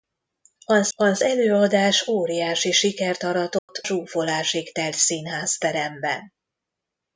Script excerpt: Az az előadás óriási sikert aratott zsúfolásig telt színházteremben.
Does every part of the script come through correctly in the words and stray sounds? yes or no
no